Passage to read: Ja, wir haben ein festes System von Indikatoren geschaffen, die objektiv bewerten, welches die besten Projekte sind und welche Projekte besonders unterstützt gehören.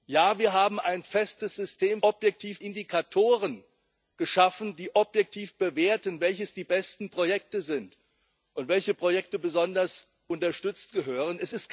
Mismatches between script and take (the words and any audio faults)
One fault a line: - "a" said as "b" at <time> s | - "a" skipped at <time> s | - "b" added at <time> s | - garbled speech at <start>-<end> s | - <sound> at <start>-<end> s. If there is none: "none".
- "von" said as "objektiv" at 2.0 s